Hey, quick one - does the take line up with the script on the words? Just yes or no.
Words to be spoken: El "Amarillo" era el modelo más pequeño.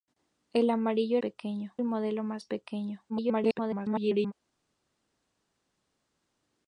no